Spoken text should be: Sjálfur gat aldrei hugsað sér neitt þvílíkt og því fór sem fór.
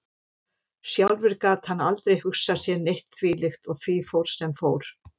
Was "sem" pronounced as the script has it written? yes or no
yes